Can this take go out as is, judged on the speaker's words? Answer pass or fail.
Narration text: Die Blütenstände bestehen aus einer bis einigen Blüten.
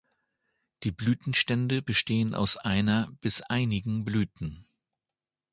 pass